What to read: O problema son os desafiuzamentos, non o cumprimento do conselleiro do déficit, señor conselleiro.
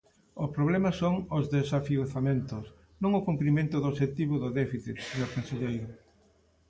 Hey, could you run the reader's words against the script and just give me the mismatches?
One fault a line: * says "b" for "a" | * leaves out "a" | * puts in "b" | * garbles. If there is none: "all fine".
* says "obxectivo" for "conselleiro"